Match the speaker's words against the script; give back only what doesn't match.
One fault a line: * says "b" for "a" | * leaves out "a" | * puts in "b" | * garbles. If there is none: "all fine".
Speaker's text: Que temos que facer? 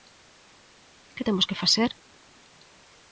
all fine